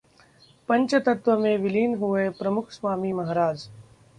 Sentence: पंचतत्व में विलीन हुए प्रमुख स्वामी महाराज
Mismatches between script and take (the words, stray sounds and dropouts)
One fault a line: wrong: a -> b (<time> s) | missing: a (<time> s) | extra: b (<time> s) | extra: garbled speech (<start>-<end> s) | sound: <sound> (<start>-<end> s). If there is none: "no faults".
no faults